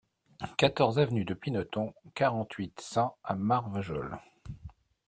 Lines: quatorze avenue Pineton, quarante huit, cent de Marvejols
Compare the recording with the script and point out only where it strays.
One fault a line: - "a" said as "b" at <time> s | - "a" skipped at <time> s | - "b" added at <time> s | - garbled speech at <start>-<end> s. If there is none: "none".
- "de" added at 1.2 s
- "de" said as "à" at 3.2 s